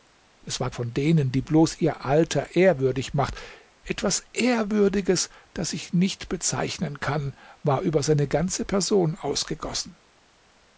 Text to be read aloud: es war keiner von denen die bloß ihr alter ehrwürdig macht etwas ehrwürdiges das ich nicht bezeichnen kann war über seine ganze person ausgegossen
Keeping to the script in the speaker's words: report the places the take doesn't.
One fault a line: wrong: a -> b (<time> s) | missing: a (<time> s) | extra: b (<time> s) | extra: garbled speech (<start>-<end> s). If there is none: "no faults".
missing: keiner (0.7 s)